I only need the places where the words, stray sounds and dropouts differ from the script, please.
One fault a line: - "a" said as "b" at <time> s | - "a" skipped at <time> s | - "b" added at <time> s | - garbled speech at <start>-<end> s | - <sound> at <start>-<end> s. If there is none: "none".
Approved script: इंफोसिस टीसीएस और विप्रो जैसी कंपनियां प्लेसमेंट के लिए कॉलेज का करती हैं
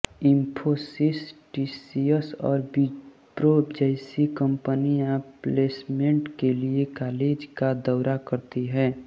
- "दौरा" added at 7.9 s